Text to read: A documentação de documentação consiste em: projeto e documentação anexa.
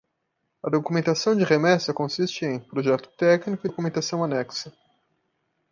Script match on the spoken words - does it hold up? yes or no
no